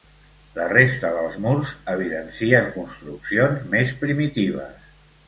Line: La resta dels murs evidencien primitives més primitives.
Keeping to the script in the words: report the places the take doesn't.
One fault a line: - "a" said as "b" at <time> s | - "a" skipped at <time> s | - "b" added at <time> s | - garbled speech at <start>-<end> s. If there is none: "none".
- "primitives" said as "construccions" at 2.7 s